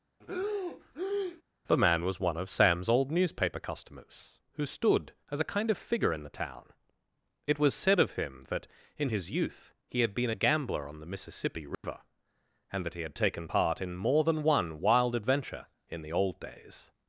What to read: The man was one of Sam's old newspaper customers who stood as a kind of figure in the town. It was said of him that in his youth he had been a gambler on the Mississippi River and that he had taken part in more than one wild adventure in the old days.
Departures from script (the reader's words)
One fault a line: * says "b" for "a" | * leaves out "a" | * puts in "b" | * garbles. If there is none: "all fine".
all fine